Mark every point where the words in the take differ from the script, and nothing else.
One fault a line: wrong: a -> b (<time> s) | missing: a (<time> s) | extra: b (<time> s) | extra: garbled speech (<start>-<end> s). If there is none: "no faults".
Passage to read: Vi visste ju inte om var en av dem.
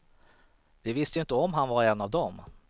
extra: han (1.5 s)